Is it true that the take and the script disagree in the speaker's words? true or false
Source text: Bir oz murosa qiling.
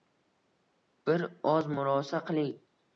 false